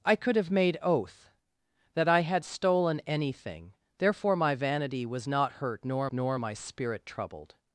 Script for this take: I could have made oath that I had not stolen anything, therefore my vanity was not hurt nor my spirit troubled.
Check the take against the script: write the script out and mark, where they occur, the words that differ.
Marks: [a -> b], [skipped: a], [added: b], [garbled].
I could have made oath that I had [skipped: not] stolen anything, therefore my vanity was not hurt nor [added: nor] my spirit troubled.